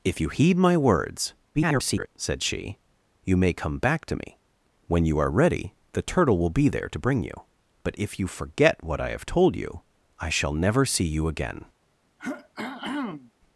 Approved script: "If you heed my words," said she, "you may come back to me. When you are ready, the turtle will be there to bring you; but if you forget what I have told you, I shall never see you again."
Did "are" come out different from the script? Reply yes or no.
no